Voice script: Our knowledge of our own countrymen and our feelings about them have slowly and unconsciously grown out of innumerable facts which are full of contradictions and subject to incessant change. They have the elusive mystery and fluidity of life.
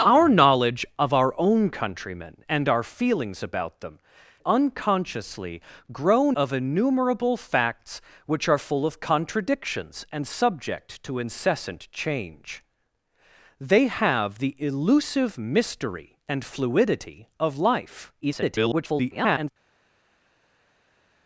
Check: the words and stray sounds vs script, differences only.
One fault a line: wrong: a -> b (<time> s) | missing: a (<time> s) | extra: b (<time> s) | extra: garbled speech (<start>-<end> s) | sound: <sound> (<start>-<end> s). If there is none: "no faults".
missing: have slowly and (4.0 s)
missing: out (6.3 s)
extra: garbled speech (18.2-19.5 s)